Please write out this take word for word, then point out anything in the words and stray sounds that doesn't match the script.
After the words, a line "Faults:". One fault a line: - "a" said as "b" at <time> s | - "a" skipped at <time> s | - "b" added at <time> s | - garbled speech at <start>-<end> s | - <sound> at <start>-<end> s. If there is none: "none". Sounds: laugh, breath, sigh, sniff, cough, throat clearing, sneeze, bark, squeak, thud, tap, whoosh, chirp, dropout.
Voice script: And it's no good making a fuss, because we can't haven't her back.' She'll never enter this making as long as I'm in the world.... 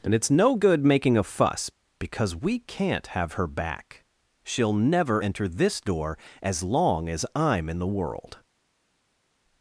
And it's no good making a fuss, because we can't have her back.' She'll never enter this door as long as I'm in the world....
Faults:
- "haven't" said as "have" at 3.1 s
- "making" said as "door" at 5.8 s